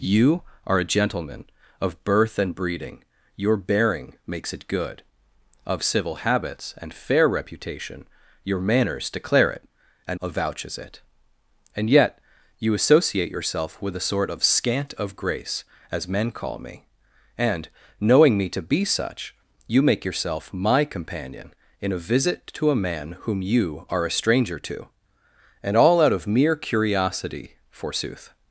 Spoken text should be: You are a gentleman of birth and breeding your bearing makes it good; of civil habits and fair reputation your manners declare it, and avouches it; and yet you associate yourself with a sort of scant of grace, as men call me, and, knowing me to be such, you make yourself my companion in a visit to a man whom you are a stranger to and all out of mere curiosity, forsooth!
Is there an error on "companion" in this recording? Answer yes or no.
no